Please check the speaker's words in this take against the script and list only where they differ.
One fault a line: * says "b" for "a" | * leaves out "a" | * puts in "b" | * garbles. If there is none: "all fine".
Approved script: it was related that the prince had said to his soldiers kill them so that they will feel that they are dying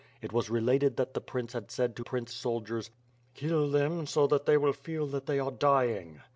* says "prince" for "his"